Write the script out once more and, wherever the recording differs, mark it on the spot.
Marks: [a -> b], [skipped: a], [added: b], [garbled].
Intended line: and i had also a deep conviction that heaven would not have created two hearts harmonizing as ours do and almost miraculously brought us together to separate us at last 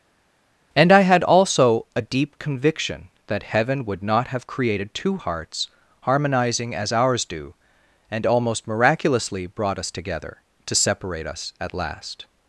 and i had also a deep conviction that heaven would not have created two hearts harmonizing as ours do and almost miraculously brought us together to separate us at last